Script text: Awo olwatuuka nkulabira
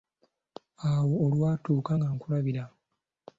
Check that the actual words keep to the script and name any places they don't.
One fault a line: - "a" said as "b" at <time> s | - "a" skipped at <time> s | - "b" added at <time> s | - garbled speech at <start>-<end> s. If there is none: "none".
- "nga" added at 2.0 s